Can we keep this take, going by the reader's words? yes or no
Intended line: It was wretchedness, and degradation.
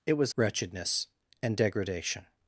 yes